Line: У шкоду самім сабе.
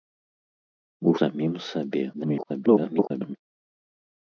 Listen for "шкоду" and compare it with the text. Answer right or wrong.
wrong